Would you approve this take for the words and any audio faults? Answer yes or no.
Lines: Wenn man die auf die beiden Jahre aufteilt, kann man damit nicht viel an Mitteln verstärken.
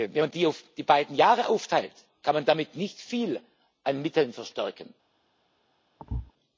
no